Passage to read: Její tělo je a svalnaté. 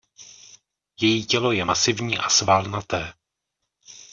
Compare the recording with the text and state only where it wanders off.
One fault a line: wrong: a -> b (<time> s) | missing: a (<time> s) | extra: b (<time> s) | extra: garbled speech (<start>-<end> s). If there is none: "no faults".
extra: masivní (1.6 s)